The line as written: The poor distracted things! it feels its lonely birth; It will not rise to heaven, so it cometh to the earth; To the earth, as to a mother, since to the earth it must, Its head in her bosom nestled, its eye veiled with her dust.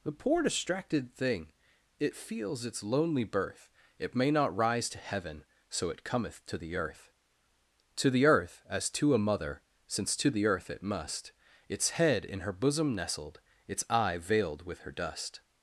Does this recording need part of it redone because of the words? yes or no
yes